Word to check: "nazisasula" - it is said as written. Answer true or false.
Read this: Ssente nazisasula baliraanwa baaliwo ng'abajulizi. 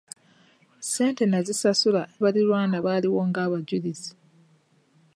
true